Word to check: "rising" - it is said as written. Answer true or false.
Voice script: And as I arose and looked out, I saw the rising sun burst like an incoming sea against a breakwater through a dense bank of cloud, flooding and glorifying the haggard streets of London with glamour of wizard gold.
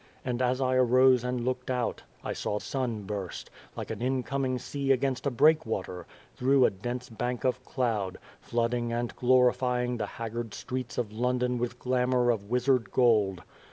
false